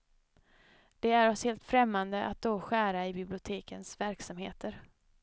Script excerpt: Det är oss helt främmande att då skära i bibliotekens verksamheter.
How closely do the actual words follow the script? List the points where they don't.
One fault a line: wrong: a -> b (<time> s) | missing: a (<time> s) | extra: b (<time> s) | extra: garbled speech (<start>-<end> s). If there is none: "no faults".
no faults